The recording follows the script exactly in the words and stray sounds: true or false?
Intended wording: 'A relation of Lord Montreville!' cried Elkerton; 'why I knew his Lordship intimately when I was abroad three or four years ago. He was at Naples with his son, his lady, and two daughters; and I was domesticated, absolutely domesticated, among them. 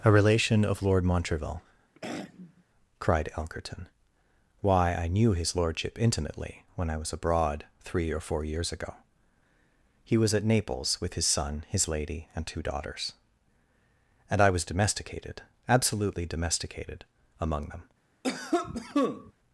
false